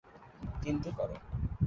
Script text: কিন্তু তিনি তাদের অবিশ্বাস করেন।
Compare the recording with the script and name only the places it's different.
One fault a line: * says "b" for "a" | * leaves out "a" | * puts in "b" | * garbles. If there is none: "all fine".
* leaves out "তিনি তাদের অবিশ্বাস"